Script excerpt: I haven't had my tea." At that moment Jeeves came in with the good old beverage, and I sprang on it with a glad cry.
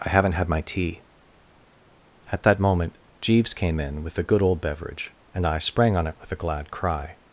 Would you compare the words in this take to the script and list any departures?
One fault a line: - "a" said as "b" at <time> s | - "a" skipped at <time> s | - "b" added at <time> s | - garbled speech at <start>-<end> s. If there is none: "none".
none